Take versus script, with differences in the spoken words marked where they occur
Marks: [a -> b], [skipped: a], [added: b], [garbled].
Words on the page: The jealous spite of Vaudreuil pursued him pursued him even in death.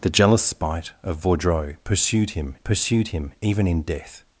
The jealous spite of Vaudreuil pursued him pursued him even in death.